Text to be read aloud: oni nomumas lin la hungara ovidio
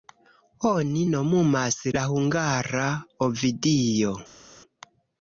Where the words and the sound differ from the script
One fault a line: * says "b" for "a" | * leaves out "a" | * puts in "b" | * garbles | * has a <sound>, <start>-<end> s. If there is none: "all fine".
* leaves out "lin"